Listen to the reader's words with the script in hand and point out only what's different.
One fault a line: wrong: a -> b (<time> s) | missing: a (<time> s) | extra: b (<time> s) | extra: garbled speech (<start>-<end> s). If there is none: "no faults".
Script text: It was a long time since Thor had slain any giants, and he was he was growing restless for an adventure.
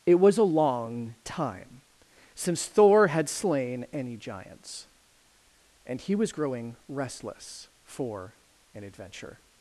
missing: he was (6.3 s)